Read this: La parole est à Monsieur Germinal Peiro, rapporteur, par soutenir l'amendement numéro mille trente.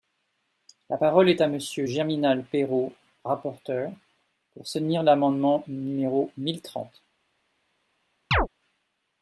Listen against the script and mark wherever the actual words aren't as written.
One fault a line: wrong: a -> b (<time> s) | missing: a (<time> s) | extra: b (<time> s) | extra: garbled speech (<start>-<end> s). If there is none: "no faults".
wrong: par -> pour (4.5 s)